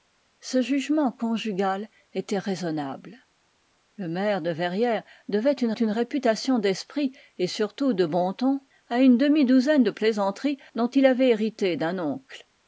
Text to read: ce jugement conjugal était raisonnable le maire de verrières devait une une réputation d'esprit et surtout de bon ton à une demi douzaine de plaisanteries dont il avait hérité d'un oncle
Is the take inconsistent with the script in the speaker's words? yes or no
no